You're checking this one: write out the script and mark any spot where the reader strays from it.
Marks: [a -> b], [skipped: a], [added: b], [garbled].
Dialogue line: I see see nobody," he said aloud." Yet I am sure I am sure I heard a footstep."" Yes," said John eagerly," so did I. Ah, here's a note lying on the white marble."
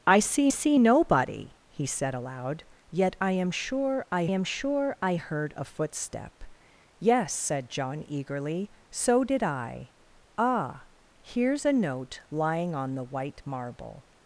I see see nobody," he said aloud." Yet I am sure I am sure I heard a footstep."" Yes," said John eagerly," so did I. Ah, here's a note lying on the white marble."